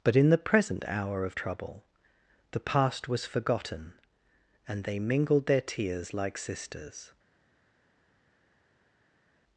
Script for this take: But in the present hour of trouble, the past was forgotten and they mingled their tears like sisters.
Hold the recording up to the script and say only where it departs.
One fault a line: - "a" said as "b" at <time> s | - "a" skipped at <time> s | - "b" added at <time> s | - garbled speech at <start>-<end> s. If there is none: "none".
none